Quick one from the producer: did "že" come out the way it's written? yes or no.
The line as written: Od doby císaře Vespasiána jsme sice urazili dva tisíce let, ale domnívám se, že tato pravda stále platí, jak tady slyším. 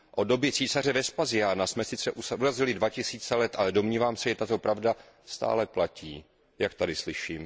yes